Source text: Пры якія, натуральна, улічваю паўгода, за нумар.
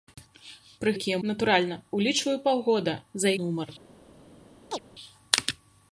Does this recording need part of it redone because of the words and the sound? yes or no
yes